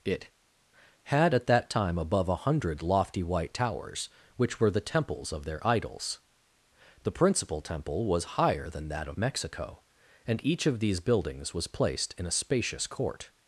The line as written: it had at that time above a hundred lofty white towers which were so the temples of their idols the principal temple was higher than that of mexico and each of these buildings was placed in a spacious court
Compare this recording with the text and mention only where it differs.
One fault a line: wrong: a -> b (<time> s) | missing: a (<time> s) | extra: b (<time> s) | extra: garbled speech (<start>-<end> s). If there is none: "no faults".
missing: so (4.7 s)